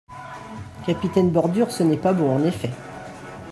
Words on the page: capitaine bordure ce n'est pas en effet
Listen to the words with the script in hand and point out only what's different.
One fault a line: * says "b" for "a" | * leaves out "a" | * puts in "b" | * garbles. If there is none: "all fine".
* puts in "bon"